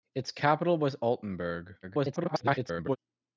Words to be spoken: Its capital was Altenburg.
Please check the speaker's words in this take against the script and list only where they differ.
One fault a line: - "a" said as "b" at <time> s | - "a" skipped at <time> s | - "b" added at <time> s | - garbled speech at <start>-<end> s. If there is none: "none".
- garbled speech at 1.8-3.0 s